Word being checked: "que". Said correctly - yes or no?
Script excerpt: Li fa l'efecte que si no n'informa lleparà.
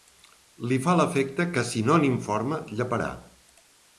yes